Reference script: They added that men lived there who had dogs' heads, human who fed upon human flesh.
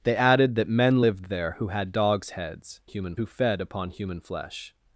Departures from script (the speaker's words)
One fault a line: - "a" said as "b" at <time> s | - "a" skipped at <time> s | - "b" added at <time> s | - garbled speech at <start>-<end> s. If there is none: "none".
none